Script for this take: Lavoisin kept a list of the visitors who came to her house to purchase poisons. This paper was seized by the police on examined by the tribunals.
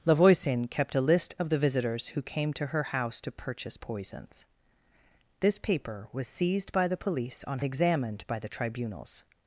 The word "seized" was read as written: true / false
true